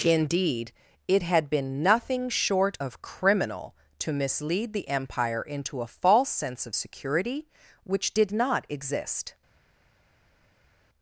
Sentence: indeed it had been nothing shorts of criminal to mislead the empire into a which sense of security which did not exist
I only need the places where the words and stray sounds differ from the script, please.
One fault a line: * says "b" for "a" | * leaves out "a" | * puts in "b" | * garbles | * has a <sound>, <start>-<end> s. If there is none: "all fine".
* says "short" for "shorts"
* says "false" for "which"